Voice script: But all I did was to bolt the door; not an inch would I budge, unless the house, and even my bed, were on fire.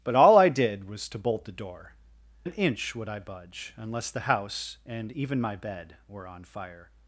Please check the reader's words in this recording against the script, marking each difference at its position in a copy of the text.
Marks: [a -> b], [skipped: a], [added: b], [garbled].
But all I did was to bolt the door; [skipped: not] an inch would I budge, unless the house, and even my bed, were on fire.